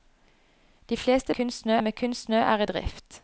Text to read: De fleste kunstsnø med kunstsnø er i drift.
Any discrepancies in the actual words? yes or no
no